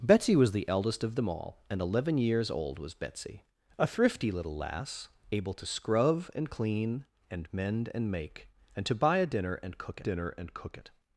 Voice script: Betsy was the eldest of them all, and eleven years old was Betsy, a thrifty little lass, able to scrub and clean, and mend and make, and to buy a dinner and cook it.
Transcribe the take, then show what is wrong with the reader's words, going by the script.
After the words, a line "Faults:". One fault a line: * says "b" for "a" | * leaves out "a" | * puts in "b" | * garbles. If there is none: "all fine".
Betsy was the eldest of them all, and eleven years old was Betsy, a thrifty little lass, able to scrub and clean, and mend and make, and to buy a dinner and cook dinner and cook it.
Faults:
* puts in "dinner and cook"